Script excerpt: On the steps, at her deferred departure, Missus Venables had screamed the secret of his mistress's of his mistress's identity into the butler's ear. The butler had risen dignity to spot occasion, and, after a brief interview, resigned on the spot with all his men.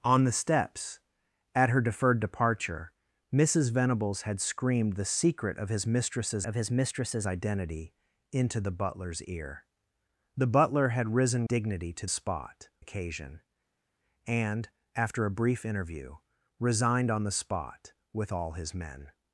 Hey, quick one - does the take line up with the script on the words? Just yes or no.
yes